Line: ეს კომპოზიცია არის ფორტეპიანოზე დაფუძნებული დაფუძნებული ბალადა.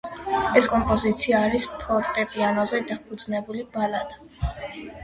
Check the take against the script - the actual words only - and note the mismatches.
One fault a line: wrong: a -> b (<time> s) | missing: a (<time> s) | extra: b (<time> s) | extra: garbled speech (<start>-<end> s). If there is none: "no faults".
missing: დაფუძნებული (3.7 s)